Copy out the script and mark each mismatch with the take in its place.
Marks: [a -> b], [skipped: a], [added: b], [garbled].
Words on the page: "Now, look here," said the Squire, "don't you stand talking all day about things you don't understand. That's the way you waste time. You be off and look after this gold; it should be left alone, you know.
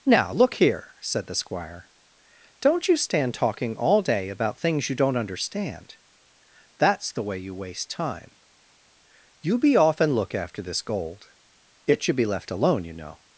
"Now, look here," said the Squire, "don't you stand talking all day about things you don't understand. That's the way you waste time. You be off and look after this gold; it should be left alone, you know.